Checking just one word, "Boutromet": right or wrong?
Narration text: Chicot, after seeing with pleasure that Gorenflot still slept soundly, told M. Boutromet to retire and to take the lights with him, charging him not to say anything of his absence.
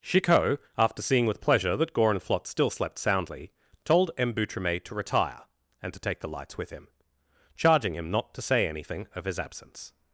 right